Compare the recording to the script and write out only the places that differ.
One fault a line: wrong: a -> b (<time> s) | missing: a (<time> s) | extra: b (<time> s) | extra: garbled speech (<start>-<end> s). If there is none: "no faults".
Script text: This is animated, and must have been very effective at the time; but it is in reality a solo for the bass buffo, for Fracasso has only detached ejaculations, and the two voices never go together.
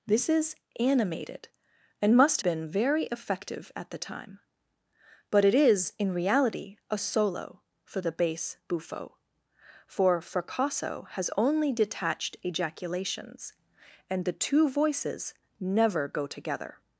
missing: have (2.4 s)